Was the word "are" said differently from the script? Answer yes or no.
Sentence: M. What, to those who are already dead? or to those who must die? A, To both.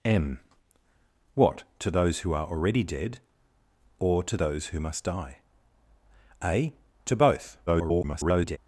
no